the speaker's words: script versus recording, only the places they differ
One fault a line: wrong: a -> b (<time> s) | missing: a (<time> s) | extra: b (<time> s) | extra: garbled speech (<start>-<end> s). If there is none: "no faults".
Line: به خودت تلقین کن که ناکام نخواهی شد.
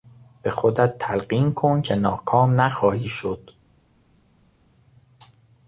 no faults